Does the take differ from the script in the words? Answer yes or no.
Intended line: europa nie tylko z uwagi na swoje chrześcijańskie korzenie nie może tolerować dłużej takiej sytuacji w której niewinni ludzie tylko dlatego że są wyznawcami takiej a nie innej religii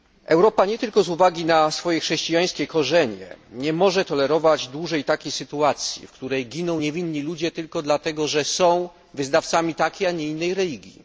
yes